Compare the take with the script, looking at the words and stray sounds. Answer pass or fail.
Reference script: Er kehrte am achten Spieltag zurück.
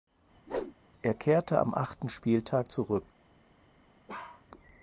fail